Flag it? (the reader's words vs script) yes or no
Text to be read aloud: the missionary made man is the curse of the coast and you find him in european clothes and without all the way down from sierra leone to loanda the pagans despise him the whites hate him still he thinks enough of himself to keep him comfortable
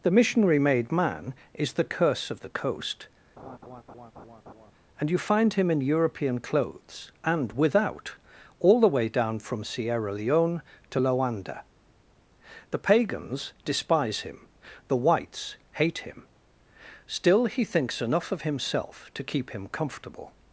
no